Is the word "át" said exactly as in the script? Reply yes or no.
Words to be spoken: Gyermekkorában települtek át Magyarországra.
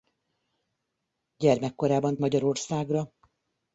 no